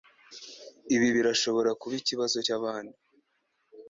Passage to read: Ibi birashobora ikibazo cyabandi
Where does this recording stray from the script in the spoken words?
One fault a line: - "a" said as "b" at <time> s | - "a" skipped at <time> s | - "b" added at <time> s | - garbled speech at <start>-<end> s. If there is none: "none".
- "kuba" added at 1.8 s